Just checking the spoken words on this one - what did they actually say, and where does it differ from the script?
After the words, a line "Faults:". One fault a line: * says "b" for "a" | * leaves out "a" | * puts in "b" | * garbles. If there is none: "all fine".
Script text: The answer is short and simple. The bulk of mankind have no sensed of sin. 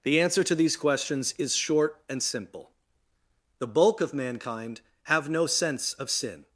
The answer to these questions is short and simple. The bulk of mankind have no sense of sin.
Faults:
* puts in "to these questions"
* says "sense" for "sensed"